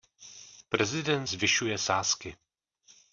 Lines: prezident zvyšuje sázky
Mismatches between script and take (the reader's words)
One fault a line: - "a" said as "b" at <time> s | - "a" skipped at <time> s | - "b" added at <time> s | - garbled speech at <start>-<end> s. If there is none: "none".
none